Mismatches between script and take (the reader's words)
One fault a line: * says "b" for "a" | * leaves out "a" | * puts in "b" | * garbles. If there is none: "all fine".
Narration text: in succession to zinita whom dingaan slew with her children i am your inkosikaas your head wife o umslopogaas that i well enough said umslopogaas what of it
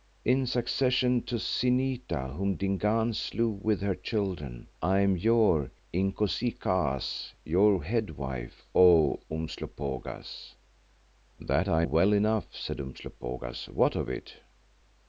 all fine